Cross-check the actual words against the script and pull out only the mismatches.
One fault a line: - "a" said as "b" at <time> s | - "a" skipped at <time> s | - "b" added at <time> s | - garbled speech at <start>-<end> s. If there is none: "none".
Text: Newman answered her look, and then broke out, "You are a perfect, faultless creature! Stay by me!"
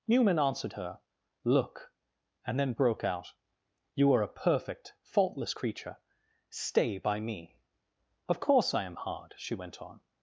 - "Of course I am hard she went on" added at 8.3 s